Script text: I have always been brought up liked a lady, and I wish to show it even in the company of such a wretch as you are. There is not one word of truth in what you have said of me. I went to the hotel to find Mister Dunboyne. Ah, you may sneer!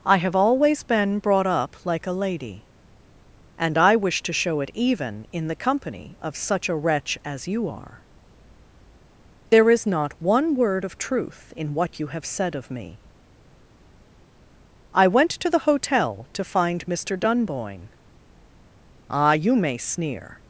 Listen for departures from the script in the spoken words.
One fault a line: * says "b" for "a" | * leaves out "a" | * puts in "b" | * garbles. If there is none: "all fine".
* says "like" for "liked"